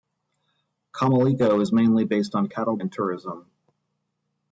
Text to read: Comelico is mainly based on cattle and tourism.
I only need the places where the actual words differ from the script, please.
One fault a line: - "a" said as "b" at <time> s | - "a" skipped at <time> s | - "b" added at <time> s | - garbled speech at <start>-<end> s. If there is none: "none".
none